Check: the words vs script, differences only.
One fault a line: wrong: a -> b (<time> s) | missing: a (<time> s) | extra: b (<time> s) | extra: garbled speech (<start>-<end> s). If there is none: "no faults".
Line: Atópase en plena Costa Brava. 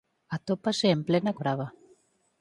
missing: Costa (1.3 s)